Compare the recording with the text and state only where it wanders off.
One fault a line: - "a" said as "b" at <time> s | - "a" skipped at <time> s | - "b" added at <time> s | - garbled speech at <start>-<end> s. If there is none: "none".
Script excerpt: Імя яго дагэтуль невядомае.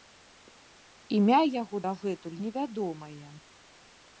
none